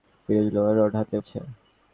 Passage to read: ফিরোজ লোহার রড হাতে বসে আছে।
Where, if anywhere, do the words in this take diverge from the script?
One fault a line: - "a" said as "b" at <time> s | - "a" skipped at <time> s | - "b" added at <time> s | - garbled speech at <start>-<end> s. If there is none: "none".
- "বসে" skipped at 1.1 s